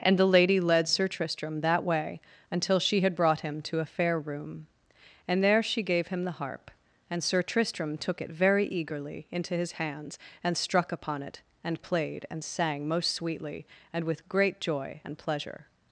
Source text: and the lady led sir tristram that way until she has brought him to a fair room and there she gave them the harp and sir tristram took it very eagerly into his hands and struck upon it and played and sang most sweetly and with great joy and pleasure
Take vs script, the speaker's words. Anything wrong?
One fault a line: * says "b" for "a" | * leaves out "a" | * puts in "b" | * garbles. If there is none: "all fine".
* says "had" for "has"
* says "him" for "them"